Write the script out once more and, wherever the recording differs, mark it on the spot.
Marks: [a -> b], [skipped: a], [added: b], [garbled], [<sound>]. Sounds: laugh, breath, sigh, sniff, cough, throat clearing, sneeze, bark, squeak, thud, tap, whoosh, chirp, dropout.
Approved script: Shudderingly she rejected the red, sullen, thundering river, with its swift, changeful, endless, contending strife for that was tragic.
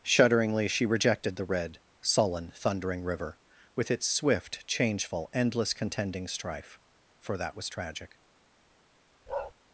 Shudderingly she rejected the red, sullen, thundering river, with its swift, changeful, endless, contending strife for that was tragic. [bark]